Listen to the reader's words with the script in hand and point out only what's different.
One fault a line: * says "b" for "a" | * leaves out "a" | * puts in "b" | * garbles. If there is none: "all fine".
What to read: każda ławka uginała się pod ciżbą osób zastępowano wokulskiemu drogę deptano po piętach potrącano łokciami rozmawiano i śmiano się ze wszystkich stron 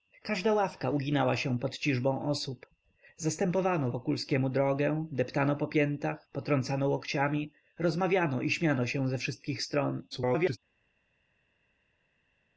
* garbles